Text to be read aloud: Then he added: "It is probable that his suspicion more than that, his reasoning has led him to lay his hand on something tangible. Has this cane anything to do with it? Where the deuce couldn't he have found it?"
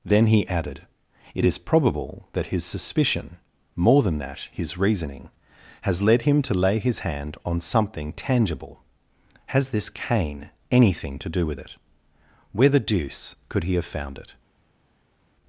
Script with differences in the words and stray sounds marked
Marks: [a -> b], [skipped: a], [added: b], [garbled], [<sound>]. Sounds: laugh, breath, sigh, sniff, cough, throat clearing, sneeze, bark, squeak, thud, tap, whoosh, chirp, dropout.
Then he added: "It is probable that his suspicion more than that, his reasoning has led him to lay his hand on something tangible. Has this cane anything to do with it? Where the deuce [couldn't -> could] he have found it?"